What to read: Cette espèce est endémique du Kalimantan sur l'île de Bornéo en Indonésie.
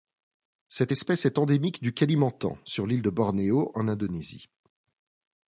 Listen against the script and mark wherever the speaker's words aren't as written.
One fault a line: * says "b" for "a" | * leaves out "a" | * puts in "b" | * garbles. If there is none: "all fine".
all fine